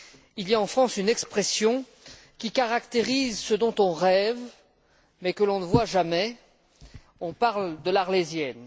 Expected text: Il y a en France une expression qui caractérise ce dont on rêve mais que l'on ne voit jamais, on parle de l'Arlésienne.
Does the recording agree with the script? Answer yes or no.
yes